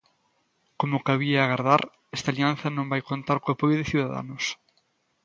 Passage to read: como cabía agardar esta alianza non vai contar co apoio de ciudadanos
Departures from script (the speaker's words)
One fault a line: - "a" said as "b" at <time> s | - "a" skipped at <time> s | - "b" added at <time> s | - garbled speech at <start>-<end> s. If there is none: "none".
none